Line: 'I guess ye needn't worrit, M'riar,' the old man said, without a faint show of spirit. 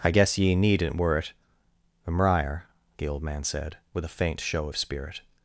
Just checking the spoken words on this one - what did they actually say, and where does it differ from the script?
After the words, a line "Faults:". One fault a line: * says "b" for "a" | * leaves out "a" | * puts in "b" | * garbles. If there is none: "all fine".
'I guess ye needn't worrit, M'riar,' the old man said, with a faint show of spirit.
Faults:
* says "with" for "without"